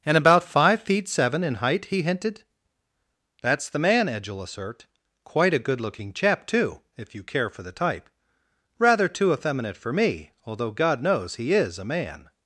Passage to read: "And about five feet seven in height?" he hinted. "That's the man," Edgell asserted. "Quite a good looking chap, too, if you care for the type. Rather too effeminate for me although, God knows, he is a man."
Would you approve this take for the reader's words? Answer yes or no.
no